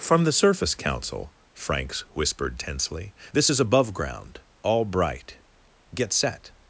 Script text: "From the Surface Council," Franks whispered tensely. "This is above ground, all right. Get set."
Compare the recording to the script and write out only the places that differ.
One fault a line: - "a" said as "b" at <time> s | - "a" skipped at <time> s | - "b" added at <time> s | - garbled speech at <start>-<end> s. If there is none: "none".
- "right" said as "bright" at 4.8 s